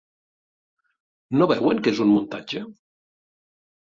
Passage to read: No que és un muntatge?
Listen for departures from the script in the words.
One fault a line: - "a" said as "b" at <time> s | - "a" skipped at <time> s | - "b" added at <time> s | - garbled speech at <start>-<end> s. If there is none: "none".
- "veuen" added at 1.5 s